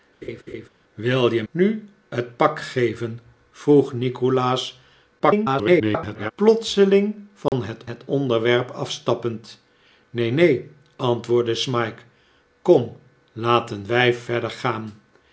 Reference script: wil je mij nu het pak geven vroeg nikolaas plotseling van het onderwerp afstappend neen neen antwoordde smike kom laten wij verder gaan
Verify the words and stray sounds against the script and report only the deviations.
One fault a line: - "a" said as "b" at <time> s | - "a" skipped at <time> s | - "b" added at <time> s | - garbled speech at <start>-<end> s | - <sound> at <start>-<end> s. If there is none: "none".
- laugh at 0.2-0.7 s
- "mij" skipped at 1.4 s
- garbled speech at 5.2-6.3 s
- dropout at 7.5-7.5 s
- "het" added at 7.8 s